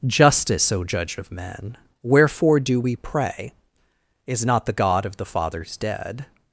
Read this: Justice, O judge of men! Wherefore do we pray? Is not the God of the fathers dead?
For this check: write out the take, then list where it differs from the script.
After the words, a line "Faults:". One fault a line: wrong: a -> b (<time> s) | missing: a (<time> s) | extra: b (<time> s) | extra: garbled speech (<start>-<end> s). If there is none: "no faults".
Justice, O judge of men! Wherefore do we pray? Is not the God of the fathers dead?
Faults:
no faults